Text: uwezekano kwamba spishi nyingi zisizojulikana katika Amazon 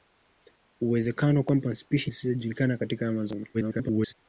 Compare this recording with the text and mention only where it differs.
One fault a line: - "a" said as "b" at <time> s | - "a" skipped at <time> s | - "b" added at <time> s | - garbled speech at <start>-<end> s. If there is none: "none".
- "nyingi" skipped at 2.1 s
- garbled speech at 3.5-4.1 s